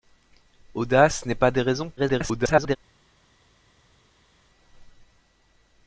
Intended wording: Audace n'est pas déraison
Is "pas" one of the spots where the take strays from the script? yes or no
no